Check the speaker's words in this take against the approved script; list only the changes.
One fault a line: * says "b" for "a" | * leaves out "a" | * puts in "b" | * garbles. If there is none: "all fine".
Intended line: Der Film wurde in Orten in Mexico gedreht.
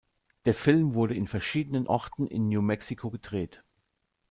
* puts in "verschiedenen"
* puts in "New"